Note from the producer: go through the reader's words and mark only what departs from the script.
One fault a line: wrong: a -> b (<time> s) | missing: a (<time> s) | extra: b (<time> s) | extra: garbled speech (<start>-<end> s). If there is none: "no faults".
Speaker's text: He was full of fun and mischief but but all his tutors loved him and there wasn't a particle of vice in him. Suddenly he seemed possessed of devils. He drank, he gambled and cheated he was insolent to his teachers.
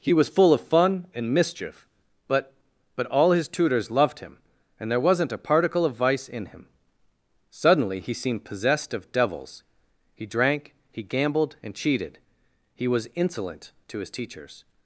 no faults